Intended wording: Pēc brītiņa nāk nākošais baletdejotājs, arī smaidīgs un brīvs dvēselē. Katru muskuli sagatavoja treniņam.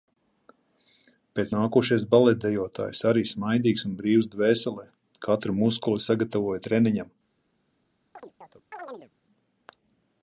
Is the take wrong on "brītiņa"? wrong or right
wrong